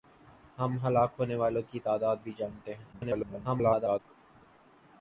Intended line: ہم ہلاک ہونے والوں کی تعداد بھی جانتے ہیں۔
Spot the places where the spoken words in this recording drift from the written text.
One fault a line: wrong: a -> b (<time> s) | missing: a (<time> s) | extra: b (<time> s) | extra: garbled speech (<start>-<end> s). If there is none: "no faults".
extra: garbled speech (2.9-4.0 s)